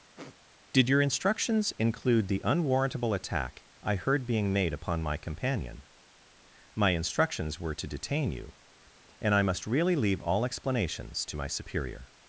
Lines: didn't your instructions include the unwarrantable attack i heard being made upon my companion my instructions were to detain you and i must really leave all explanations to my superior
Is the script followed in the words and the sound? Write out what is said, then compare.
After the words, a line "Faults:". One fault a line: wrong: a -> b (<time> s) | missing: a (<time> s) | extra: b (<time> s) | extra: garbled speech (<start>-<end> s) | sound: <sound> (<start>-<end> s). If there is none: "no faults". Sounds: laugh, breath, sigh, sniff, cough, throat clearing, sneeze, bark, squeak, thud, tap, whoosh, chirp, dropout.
did your instructions include the unwarrantable attack i heard being made upon my companion my instructions were to detain you and i must really leave all explanations to my superior
Faults:
sound: sniff (0.2-0.4 s)
wrong: didn't -> did (0.7 s)